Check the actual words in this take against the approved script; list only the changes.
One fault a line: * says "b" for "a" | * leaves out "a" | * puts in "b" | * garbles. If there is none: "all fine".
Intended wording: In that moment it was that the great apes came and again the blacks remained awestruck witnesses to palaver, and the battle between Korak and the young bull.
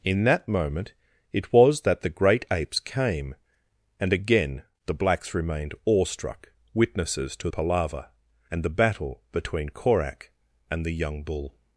all fine